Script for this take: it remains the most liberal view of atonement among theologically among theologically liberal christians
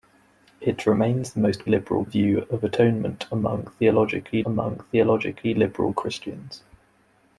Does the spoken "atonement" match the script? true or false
true